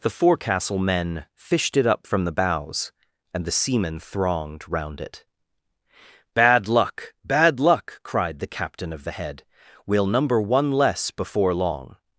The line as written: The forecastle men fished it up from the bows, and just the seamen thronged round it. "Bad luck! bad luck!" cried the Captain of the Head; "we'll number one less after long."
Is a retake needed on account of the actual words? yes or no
yes